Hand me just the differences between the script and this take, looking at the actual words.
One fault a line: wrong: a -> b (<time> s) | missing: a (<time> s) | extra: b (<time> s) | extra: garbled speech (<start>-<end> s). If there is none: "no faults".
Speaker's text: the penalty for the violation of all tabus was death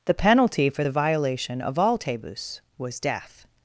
no faults